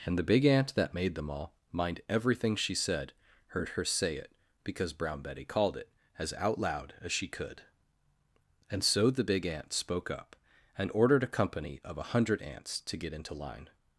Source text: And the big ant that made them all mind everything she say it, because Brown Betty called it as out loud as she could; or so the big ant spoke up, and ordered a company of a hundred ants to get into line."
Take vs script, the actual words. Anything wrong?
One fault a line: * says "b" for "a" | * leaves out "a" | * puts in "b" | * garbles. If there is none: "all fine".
* puts in "said heard her"
* says "and" for "or"